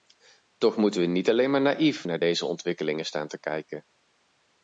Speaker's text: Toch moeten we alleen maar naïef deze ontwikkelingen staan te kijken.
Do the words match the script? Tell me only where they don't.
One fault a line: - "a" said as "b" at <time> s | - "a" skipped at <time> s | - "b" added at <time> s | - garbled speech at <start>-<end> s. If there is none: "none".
- "niet" added at 1.1 s
- "naar" added at 2.0 s